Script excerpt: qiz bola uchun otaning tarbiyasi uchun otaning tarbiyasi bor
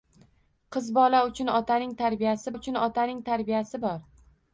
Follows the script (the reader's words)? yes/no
yes